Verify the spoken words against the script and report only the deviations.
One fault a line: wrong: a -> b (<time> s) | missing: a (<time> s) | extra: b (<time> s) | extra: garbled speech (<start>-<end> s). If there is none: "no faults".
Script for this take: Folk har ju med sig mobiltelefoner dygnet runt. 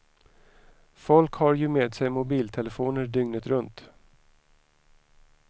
no faults